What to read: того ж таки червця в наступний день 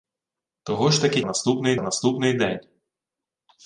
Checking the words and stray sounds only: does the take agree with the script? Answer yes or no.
no